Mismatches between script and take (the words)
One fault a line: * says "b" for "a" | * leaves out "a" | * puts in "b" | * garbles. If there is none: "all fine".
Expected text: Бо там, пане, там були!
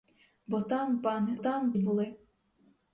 all fine